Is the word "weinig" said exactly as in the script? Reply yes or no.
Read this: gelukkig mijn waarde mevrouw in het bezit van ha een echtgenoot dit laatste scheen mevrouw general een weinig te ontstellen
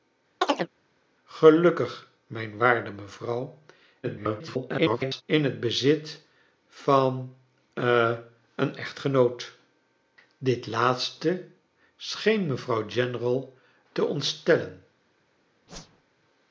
no